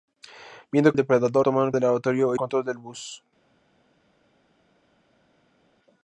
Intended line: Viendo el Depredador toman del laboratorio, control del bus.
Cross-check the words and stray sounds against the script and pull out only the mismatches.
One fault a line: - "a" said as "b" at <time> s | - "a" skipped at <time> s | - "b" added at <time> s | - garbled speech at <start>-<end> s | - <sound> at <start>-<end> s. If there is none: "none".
none